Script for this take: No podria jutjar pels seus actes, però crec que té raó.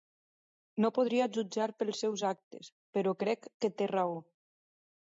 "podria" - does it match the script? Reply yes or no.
yes